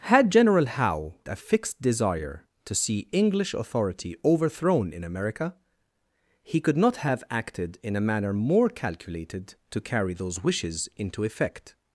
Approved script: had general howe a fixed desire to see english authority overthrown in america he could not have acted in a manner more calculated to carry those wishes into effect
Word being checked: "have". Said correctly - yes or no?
yes